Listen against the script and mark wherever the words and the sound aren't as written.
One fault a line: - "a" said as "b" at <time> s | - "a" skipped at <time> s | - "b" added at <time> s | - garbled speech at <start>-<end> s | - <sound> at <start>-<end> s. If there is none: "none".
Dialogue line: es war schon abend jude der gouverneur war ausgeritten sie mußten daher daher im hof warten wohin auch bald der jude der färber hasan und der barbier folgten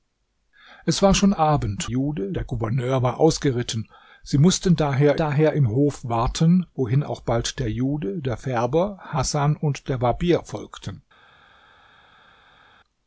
none